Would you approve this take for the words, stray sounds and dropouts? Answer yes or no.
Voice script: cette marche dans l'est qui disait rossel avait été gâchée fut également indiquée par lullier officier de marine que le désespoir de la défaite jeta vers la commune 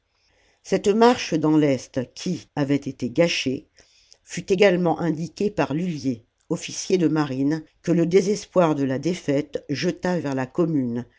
no